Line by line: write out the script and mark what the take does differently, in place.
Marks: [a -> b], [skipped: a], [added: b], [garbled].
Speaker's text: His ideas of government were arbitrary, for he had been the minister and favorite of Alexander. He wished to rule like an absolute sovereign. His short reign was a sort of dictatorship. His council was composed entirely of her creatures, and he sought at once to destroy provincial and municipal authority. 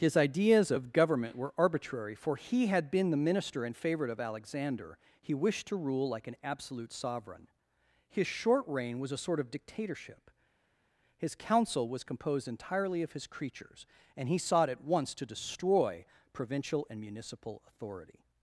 His ideas of government were arbitrary, for he had been the minister and favorite of Alexander. He wished to rule like an absolute sovereign. His short reign was a sort of dictatorship. His council was composed entirely of [her -> his] creatures, and he sought at once to destroy provincial and municipal authority.